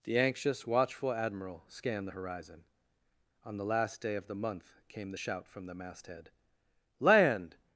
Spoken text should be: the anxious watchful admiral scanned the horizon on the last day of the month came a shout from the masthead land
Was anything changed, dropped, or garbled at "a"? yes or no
yes